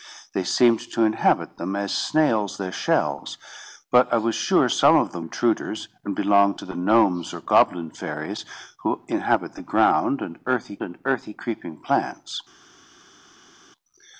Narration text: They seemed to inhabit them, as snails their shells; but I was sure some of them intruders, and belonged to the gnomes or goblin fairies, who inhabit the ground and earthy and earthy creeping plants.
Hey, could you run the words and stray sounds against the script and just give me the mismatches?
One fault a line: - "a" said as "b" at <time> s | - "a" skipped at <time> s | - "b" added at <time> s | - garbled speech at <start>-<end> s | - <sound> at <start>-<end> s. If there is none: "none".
none